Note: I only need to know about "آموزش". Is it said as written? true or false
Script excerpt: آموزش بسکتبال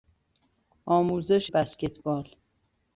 true